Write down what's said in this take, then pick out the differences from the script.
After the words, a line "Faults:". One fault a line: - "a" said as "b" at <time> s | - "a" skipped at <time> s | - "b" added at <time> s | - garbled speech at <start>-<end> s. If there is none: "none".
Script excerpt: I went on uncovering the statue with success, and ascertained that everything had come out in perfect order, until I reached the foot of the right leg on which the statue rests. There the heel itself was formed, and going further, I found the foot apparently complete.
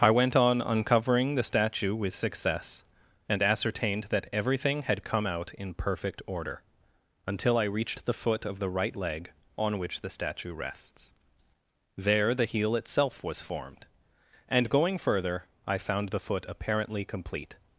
I went on uncovering the statue with success, and ascertained that everything had come out in perfect order, until I reached the foot of the right leg on which the statue rests. There the heel itself was formed, and going further, I found the foot apparently complete.
Faults:
none